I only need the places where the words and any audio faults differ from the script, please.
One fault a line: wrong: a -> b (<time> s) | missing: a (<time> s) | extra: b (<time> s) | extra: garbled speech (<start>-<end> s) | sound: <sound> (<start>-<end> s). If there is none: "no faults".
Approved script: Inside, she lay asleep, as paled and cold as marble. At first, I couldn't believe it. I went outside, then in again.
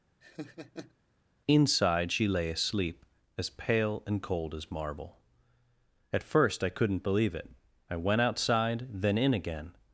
sound: laugh (0.2-0.9 s)
wrong: paled -> pale (3.5 s)